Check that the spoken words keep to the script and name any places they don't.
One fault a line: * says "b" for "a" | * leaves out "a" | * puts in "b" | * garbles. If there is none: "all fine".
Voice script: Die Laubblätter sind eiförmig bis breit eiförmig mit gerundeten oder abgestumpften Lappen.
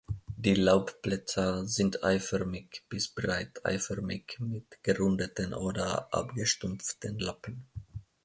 all fine